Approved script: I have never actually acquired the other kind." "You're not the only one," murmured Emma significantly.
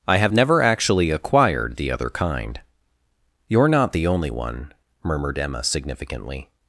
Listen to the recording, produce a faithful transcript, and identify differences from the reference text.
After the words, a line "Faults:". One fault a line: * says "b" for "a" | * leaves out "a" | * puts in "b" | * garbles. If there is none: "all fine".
I have never actually acquired the other kind." "You're not the only one," murmured Emma significantly.
Faults:
all fine